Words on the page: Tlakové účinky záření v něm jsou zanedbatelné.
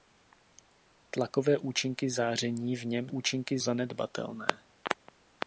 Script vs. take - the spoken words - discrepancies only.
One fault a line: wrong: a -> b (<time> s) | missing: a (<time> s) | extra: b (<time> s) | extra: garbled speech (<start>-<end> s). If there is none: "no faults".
wrong: jsou -> účinky (3.1 s)